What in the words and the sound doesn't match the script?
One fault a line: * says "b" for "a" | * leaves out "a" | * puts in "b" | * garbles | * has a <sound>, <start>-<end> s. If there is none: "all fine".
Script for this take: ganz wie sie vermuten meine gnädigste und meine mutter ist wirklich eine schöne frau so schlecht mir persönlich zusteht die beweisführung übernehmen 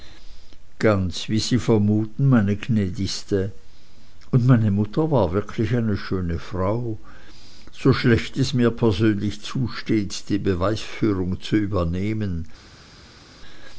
* says "war" for "ist"
* puts in "es"
* puts in "zu"